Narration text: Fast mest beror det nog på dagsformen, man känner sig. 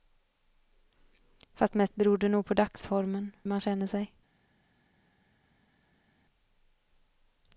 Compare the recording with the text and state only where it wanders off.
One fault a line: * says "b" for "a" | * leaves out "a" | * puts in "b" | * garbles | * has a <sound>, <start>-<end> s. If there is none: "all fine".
all fine